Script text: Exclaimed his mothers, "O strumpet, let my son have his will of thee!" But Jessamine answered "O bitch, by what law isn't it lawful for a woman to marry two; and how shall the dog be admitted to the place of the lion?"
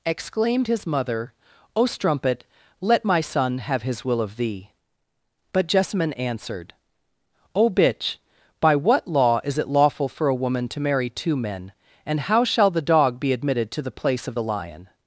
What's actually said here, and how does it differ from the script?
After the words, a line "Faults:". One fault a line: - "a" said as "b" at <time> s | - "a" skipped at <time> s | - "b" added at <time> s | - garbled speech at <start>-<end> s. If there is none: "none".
Exclaimed his mother, "O strumpet, let my son have his will of thee!" But Jessamine answered "O bitch, by what law is it lawful for a woman to marry two men; and how shall the dog be admitted to the place of the lion?"
Faults:
- "mothers" said as "mother" at 0.9 s
- "isn't" said as "is" at 9.4 s
- "men" added at 11.3 s